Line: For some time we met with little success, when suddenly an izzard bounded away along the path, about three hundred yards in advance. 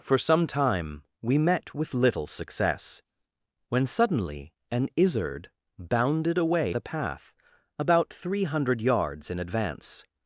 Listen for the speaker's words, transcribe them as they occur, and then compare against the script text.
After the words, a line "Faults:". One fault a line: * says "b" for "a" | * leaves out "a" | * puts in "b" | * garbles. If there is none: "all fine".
For some time we met with little success, when suddenly an izzard bounded away the path, about three hundred yards in advance.
Faults:
* leaves out "along"